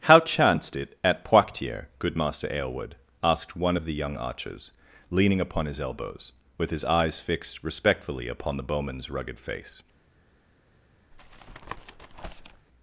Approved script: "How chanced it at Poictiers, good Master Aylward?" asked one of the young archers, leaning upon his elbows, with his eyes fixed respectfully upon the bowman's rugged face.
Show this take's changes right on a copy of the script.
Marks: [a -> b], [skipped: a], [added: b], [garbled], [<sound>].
"How chanced it at Poictiers, good Master Aylward?" asked one of the young archers, leaning upon his elbows, with his eyes fixed respectfully upon the bowman's rugged face. [tap]